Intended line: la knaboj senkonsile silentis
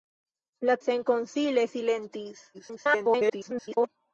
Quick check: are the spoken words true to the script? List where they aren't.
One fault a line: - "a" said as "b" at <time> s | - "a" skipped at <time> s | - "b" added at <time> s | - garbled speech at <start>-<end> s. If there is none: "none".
- "knaboj" skipped at 0.8 s
- garbled speech at 2.5-3.9 s